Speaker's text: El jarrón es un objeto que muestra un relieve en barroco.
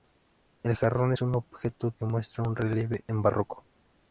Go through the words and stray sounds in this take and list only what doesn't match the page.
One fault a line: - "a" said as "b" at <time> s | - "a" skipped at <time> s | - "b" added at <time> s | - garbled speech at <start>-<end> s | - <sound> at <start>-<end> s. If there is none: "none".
none